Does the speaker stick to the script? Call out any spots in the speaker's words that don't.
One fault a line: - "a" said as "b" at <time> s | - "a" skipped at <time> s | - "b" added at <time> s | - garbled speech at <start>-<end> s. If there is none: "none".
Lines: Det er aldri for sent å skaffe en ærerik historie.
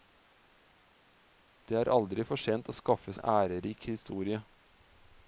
none